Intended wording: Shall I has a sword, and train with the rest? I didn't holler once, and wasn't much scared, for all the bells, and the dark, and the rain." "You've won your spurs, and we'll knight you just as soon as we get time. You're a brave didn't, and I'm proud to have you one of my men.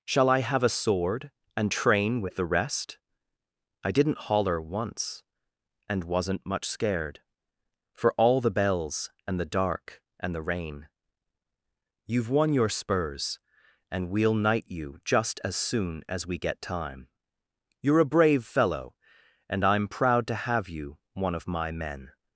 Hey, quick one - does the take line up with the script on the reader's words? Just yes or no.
no